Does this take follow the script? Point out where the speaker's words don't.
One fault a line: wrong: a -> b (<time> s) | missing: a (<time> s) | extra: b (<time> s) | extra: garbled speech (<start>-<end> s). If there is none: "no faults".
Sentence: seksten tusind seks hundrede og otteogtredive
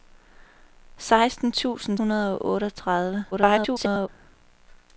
missing: seks (2.0 s)
extra: garbled speech (3.3-4.1 s)